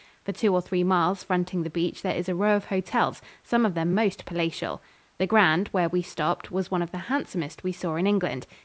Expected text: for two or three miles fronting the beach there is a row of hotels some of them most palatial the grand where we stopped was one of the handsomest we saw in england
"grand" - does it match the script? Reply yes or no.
yes